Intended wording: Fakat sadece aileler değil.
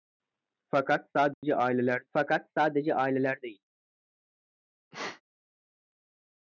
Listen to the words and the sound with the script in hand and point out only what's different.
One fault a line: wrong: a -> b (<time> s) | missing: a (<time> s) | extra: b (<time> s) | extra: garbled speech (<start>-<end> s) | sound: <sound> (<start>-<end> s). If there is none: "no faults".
sound: dropout (1.3-1.4 s)
extra: fakat sadece aileler (2.1 s)
sound: sneeze (4.9-5.2 s)